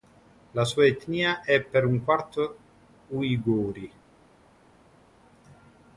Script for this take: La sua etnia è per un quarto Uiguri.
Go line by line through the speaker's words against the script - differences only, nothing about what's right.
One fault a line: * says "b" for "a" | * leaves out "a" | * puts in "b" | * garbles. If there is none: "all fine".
all fine